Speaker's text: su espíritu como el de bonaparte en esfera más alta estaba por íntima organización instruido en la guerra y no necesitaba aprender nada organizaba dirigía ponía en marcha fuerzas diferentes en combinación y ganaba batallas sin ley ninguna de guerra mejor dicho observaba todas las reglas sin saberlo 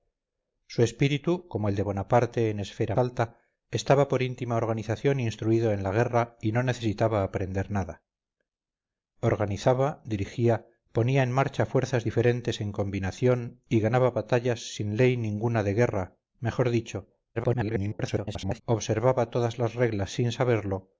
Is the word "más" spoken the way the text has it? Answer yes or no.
no